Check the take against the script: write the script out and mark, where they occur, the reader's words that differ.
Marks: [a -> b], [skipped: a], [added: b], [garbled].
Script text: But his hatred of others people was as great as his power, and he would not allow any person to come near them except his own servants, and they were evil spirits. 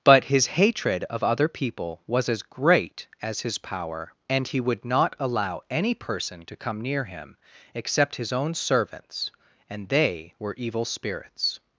But his hatred of [others -> other] people was as great as his power, and he would not allow any person to come near [them -> him] except his own servants, and they were evil spirits.